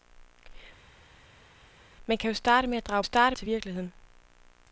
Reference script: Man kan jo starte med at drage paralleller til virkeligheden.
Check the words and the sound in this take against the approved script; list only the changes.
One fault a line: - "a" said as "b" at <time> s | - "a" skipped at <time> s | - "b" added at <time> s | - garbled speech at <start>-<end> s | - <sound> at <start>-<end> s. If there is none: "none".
- "paralleller" said as "starte" at 3.0 s